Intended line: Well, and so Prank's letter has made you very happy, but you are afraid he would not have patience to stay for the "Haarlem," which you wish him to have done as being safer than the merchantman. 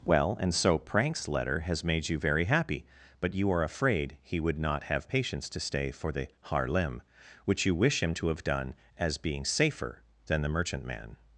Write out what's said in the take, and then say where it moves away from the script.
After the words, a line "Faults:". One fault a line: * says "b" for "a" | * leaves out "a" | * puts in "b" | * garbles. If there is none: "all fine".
Well, and so Prank's letter has made you very happy, but you are afraid he would not have patience to stay for the "Haarlem," which you wish him to have done as being safer than the merchantman.
Faults:
all fine